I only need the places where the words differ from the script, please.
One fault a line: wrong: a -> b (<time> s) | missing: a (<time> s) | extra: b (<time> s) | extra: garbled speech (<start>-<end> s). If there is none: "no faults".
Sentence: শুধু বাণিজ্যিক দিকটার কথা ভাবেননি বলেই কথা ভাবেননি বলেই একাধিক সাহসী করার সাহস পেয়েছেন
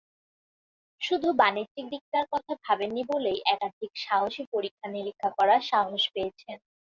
missing: কথা ভাবেননি বলেই (3.4 s)
extra: পরীক্ষা-নিরীক্ষা (4.5 s)